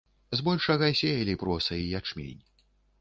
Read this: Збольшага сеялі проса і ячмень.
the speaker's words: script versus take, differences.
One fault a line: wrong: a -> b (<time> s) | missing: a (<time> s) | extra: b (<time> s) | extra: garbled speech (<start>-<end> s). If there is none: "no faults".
no faults